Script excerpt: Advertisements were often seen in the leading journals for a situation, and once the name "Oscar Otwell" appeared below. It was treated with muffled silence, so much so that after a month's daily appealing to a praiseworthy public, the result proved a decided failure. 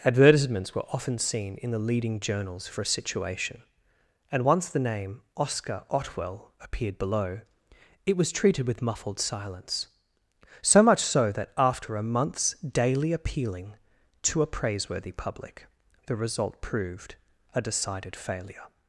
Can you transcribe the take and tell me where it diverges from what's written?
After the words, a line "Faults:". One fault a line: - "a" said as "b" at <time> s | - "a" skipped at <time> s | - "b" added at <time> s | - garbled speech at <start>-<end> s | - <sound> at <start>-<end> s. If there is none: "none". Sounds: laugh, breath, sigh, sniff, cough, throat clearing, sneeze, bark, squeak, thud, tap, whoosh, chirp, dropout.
Advertisements were often seen in the leading journals for a situation, and once the name "Oscar Otwell" appeared below. It was treated with muffled silence, so much so that after a month's daily appealing to a praiseworthy public, the result proved a decided failure.
Faults:
none